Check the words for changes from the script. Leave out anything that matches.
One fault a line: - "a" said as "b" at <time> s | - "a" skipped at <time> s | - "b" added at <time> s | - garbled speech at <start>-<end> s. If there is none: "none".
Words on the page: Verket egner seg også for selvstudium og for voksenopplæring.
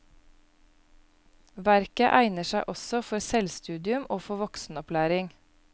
none